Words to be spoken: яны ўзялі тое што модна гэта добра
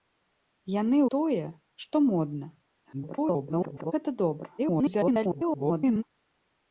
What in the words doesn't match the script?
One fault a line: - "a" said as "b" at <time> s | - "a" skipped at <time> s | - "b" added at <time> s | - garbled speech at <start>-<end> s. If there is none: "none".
- "ўзялі" skipped at 1.0 s
- garbled speech at 2.9-3.9 s
- garbled speech at 4.6-6.0 s